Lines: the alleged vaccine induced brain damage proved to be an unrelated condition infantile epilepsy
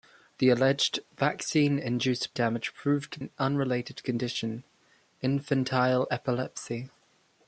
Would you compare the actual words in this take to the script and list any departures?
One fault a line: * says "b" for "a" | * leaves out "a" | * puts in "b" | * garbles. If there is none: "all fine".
* leaves out "brain"
* leaves out "be"